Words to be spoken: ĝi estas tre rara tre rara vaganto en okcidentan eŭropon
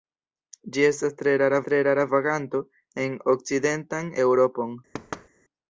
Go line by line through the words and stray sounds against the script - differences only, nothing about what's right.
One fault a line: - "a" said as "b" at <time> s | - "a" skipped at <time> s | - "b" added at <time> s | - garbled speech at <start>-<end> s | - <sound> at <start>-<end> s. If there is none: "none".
- thud at 4.9-5.3 s